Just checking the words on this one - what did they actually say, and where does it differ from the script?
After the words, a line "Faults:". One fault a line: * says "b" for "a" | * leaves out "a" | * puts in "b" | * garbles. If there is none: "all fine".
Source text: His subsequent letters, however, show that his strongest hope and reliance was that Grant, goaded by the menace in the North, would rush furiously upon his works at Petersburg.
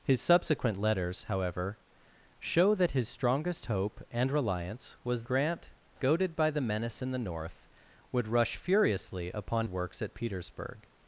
His subsequent letters, however, show that his strongest hope and reliance was Grant, goaded by the menace in the North, would rush furiously upon works at Petersburg.
Faults:
* leaves out "that"
* leaves out "his"